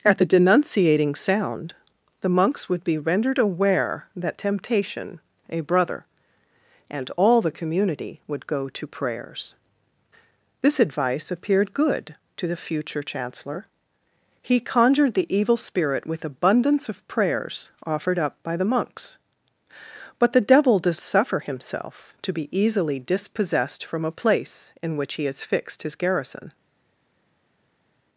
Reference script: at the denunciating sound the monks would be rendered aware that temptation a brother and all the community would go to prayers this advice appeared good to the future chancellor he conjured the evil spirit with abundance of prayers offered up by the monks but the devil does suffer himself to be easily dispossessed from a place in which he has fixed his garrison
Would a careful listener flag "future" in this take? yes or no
no